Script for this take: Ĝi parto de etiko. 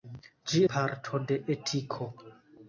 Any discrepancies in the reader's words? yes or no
no